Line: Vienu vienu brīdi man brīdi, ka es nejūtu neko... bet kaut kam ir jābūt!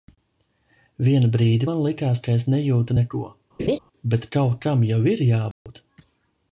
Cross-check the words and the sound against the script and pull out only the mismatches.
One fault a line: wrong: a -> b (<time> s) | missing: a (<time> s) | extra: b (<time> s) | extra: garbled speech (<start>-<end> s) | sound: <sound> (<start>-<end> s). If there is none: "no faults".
missing: vienu (1.3 s)
wrong: brīdi -> likās (1.9 s)
sound: laugh (3.6-3.8 s)
extra: jau (4.9 s)
sound: dropout (5.5-5.7 s)